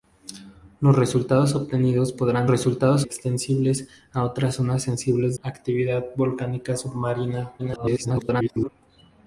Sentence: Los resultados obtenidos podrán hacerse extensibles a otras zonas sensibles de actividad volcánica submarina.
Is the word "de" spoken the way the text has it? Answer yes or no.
no